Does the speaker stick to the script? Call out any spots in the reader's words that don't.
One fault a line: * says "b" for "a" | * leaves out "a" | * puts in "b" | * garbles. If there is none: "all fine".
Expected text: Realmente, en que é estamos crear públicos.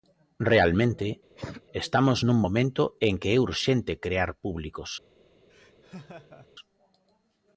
* puts in "estamos nun momento"
* says "urxente" for "estamos"